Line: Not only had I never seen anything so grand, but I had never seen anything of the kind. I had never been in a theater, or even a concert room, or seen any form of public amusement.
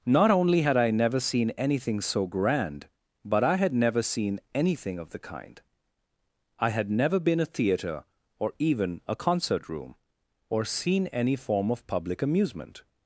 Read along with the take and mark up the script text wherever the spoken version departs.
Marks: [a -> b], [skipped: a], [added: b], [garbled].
Not only had I never seen anything so grand, but I had never seen anything of the kind. I had never been [skipped: in] a theater, or even a concert room, or seen any form of public amusement.